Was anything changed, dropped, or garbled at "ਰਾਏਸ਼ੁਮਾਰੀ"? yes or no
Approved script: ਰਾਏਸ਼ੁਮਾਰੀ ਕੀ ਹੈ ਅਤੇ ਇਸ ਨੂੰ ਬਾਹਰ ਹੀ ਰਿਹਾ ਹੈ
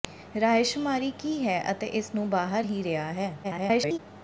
no